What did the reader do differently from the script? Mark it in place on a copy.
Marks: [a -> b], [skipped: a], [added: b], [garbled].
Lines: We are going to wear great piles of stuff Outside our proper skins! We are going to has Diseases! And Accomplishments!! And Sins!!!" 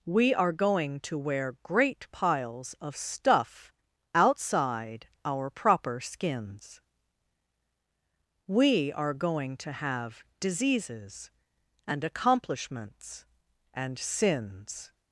We are going to wear great piles of stuff Outside our proper skins! We are going to [has -> have] Diseases! And Accomplishments!! And Sins!!!"